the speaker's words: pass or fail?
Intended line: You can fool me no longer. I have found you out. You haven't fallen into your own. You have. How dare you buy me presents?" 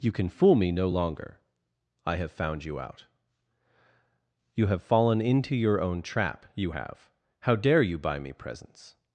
fail